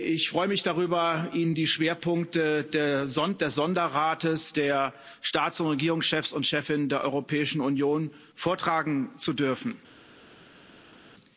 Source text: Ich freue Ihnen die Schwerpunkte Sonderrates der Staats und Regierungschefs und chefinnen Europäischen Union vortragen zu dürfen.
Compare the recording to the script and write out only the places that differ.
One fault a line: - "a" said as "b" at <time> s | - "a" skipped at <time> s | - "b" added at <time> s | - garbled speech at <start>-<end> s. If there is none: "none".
- "mich darüber" added at 0.5 s
- "des" added at 2.6 s
- "der" added at 6.9 s